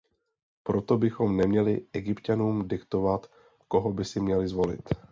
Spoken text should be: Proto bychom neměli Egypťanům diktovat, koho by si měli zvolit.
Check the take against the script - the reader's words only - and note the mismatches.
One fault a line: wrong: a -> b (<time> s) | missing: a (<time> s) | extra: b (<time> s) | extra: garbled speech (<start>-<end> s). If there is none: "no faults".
no faults